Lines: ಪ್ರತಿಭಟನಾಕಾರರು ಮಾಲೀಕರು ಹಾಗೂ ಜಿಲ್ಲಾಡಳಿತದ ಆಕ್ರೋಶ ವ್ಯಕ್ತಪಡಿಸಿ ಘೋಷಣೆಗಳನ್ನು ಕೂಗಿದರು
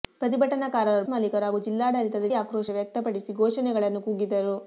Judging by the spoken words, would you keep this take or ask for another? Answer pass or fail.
pass